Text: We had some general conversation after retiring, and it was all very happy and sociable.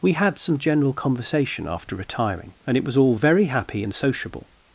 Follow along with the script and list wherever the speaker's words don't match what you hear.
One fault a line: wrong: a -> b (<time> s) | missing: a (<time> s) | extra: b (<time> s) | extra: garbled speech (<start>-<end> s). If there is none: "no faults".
no faults